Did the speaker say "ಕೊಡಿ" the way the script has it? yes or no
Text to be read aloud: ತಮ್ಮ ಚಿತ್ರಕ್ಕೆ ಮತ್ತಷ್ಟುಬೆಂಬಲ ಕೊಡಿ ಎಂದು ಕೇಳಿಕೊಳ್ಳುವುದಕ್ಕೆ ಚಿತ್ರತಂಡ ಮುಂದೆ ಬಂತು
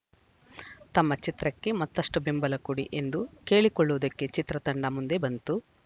yes